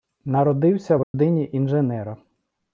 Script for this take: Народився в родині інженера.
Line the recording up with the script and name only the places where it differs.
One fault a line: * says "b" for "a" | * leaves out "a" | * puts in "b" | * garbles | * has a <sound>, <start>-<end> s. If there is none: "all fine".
* has a dropout, 1.0-1.1 s